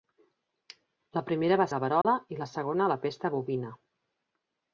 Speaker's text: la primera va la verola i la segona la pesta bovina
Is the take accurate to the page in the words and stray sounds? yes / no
no